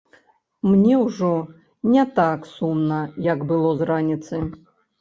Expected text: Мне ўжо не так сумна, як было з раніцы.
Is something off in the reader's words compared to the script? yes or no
no